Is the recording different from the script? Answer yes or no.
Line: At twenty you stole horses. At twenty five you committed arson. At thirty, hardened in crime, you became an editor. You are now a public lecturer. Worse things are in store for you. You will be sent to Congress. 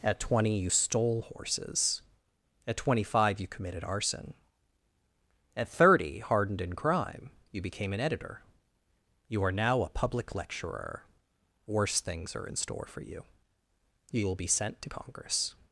no